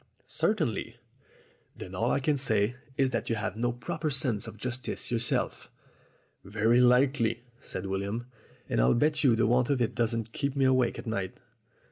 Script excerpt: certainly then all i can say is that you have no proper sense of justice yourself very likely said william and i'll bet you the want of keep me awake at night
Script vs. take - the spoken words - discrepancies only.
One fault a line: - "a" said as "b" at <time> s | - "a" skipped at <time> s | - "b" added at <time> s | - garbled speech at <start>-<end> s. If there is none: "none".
- "it doesn't" added at 9.8 s